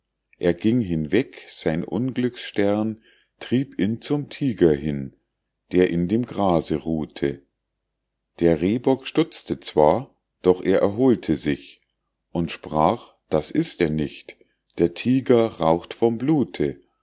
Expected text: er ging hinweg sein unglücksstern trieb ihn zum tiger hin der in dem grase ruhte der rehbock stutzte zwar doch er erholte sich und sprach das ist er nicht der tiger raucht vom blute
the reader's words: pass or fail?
pass